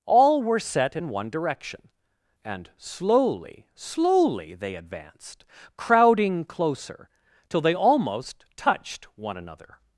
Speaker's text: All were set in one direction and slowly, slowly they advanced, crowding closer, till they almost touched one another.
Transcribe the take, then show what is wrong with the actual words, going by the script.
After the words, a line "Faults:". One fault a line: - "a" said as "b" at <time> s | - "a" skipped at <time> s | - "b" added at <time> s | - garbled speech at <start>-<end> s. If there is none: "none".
All were set in one direction and slowly, slowly they advanced, crowding closer, till they almost touched one another.
Faults:
none